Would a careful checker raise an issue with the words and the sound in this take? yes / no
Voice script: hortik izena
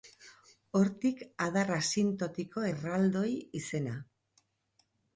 yes